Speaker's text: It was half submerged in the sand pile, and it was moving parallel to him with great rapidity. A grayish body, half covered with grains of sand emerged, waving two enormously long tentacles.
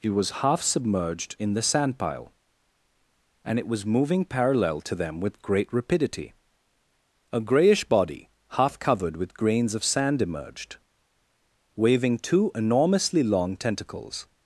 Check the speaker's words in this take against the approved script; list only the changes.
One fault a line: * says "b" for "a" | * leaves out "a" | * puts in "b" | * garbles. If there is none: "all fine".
* says "them" for "him"